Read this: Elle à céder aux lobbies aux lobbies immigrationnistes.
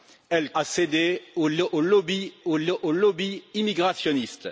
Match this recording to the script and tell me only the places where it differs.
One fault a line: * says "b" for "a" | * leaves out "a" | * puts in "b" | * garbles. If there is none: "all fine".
all fine